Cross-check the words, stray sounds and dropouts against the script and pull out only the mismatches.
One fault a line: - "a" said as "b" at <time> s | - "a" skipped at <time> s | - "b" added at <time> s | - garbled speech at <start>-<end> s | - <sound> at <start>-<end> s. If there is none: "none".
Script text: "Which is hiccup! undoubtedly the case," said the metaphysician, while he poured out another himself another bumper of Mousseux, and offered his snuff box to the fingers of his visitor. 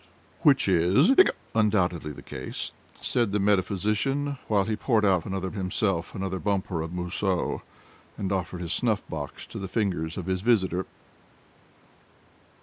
none